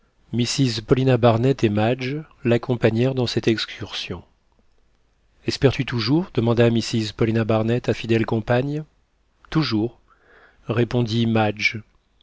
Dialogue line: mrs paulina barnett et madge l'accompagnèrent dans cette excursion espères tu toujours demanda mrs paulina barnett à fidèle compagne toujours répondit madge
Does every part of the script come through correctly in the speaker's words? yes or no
yes